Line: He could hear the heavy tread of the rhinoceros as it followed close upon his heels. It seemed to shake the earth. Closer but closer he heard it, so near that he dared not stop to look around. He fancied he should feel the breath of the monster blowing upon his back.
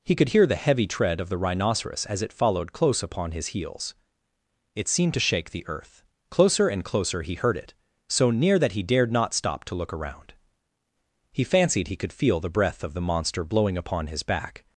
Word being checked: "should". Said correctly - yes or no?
no